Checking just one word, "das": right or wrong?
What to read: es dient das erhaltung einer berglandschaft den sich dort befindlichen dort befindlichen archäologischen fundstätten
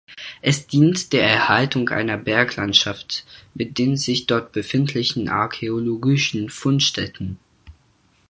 wrong